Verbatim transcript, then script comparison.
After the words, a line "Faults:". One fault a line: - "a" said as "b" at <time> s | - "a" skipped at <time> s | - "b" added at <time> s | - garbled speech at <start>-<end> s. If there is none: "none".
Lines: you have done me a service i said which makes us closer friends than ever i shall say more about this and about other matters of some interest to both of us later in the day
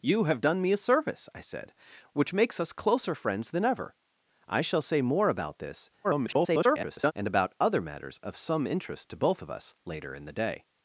you have done me a service i said which makes us closer friends than ever i shall say more about this [garbled] and about other matters of some interest to both of us later in the day
Faults:
- garbled speech at 6.0-7.1 s